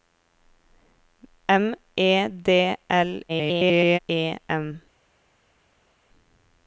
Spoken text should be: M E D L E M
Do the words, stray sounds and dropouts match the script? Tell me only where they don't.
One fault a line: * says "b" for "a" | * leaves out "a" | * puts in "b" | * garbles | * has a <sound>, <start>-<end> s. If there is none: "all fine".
* garbles